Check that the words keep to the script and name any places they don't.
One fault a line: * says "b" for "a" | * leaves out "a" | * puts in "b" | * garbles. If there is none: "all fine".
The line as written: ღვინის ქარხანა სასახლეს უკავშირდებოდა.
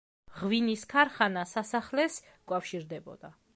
all fine